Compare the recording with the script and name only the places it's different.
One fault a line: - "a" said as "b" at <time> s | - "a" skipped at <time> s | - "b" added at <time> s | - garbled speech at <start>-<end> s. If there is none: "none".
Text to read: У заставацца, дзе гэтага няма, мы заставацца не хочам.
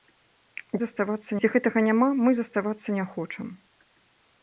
none